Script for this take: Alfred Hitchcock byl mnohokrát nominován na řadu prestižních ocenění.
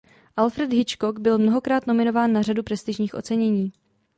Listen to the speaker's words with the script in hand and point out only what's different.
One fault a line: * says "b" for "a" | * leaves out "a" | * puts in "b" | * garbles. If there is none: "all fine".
all fine